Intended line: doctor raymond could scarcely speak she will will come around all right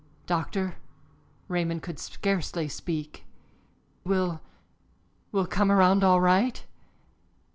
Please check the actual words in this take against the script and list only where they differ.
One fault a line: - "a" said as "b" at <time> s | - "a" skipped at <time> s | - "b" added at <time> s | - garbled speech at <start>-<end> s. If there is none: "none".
- "she" skipped at 3.2 s